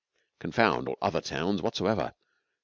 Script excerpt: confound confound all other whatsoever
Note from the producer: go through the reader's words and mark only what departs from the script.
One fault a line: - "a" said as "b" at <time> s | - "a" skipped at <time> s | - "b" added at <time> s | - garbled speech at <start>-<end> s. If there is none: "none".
- "confound" skipped at 0.9 s
- "towns" added at 1.2 s